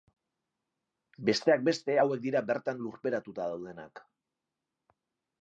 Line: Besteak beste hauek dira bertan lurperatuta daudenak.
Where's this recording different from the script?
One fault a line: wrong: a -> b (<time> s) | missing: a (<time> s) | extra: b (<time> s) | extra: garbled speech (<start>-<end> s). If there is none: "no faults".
no faults